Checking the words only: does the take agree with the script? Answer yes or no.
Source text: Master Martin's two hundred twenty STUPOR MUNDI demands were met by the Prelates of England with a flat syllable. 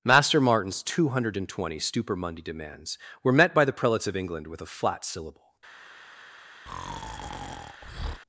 yes